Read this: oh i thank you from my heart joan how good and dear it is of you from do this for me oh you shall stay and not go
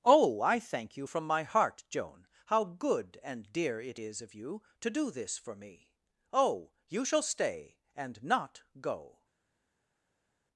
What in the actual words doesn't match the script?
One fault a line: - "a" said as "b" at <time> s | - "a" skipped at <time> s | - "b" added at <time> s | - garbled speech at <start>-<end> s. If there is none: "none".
- "from" said as "to" at 4.8 s